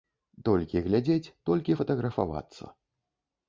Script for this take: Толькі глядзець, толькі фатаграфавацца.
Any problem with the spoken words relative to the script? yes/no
no